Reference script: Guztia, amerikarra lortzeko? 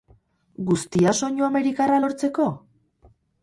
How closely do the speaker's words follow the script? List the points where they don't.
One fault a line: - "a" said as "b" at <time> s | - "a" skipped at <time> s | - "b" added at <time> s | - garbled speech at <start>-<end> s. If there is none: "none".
- "soinu" added at 1.2 s